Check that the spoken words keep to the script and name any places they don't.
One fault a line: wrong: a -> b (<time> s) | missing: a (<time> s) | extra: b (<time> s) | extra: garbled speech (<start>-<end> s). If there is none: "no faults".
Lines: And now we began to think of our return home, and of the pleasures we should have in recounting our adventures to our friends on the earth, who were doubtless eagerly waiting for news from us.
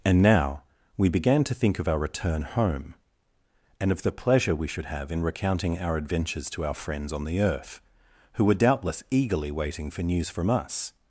wrong: pleasures -> pleasure (4.1 s)